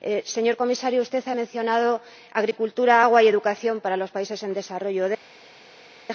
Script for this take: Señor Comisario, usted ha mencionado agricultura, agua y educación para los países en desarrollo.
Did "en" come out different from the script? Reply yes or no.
no